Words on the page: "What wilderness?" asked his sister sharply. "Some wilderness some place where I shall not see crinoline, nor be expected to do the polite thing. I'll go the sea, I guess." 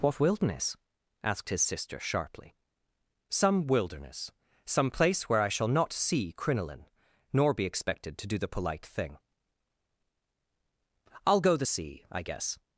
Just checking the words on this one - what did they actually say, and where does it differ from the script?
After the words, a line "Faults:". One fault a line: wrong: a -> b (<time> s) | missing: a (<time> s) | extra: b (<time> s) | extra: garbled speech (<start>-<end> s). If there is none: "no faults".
"What wilderness?" asked his sister sharply. "Some wilderness some place where I shall not see crinoline, nor be expected to do the polite thing. I'll go the sea, I guess."
Faults:
no faults